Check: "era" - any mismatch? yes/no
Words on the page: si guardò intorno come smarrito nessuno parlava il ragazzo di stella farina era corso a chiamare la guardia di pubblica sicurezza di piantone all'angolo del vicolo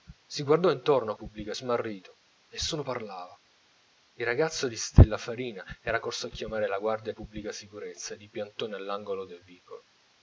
no